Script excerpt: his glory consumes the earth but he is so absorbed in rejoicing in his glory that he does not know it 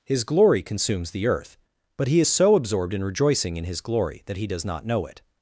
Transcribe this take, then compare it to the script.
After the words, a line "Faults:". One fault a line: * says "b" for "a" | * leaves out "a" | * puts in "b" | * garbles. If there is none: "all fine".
his glory consumes the earth but he is so absorbed in rejoicing in his glory that he does not know it
Faults:
all fine